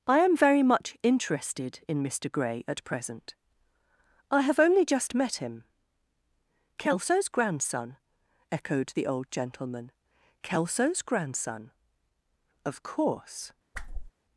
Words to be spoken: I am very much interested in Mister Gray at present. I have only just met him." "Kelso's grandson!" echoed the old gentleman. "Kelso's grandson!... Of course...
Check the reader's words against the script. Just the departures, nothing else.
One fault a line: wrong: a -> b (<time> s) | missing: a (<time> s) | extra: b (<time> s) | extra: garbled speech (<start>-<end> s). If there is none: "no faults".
no faults